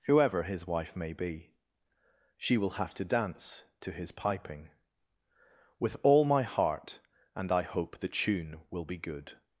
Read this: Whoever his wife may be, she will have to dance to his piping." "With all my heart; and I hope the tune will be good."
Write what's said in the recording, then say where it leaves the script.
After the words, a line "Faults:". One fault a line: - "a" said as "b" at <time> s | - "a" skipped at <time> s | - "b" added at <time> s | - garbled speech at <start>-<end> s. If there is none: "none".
Whoever his wife may be, she will have to dance to his piping." "With all my heart; and I hope the tune will be good."
Faults:
none